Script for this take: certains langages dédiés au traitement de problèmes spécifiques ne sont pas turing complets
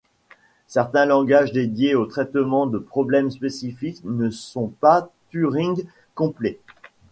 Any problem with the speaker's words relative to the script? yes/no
no